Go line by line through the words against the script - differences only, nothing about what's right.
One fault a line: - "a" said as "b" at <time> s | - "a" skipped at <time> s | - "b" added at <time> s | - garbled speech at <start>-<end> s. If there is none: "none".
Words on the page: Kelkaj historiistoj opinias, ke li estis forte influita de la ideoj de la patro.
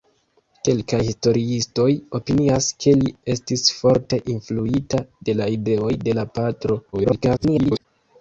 - garbled speech at 6.9-7.9 s